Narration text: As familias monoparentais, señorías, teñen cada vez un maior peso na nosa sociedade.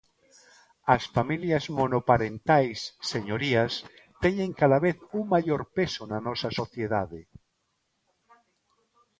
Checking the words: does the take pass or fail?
pass